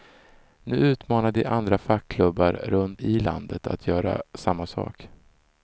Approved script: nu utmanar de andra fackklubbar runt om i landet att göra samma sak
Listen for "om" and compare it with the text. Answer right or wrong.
wrong